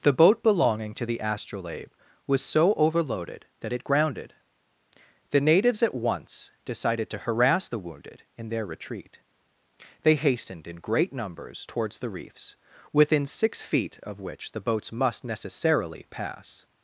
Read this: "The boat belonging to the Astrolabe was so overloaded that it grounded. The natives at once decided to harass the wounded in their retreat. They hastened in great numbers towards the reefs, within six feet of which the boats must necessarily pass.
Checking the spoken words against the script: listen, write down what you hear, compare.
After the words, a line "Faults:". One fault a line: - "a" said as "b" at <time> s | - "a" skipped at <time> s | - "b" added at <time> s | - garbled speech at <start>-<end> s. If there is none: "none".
"The boat belonging to the Astrolabe was so overloaded that it grounded. The natives at once decided to harass the wounded in their retreat. They hastened in great numbers towards the reefs, within six feet of which the boats must necessarily pass.
Faults:
none